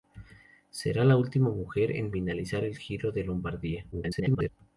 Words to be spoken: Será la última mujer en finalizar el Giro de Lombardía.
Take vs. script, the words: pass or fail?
fail